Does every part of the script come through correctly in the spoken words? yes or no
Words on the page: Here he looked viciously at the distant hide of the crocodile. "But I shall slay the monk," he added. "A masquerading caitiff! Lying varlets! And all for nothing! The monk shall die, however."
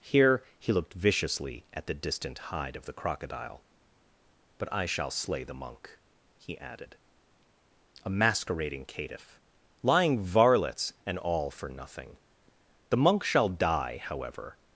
yes